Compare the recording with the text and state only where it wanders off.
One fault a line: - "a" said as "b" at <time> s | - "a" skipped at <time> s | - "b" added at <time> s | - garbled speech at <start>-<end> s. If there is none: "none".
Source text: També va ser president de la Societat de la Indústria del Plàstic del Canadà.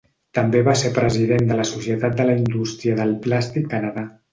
- "del" skipped at 3.7 s